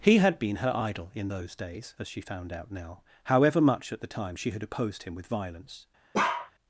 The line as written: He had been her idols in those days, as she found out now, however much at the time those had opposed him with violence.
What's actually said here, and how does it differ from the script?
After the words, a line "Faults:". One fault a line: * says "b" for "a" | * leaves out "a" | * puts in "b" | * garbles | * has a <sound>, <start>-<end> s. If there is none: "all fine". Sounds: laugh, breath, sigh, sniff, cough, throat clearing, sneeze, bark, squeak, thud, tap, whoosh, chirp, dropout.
He had been her idol in those days, as she found out now, however much at the time she had opposed him with violence.
Faults:
* says "idol" for "idols"
* says "she" for "those"
* has a bark, 6.1-6.5 s